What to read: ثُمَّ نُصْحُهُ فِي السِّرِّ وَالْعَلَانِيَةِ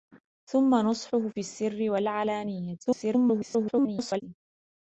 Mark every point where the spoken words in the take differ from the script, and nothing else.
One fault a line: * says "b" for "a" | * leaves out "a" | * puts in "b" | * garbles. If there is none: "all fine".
* garbles